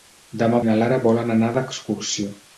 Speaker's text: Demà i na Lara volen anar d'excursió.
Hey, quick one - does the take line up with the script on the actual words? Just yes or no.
yes